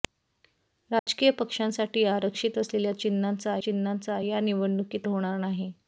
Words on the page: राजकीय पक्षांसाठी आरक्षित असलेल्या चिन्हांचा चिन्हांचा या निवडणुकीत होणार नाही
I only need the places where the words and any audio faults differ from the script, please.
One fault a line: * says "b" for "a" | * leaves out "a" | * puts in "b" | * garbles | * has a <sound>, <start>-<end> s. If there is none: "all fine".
* has a dropout, 1.0-1.1 s